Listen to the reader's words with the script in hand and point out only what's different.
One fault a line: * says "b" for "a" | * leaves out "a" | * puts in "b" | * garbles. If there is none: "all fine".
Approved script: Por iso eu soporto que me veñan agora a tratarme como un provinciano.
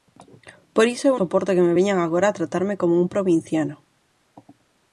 all fine